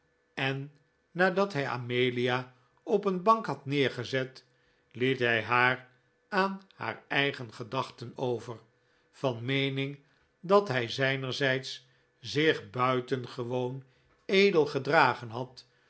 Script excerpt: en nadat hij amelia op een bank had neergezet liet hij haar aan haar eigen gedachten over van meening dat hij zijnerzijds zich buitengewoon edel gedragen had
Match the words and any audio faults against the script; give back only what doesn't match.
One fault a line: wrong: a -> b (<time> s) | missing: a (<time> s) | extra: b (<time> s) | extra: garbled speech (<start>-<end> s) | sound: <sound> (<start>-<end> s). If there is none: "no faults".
no faults